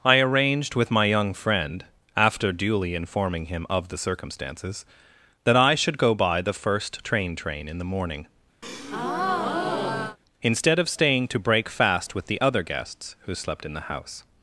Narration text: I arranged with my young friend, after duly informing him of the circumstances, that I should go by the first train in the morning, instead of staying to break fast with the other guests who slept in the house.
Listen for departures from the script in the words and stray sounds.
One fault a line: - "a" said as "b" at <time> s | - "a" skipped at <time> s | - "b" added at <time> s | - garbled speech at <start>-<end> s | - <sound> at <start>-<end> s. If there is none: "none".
- "train" added at 7.3 s
- breath at 8.6-10.2 s